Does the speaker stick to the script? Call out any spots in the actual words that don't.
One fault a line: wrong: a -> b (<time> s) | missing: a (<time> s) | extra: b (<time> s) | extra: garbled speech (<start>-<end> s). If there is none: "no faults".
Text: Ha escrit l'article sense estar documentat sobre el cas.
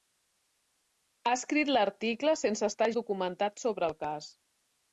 no faults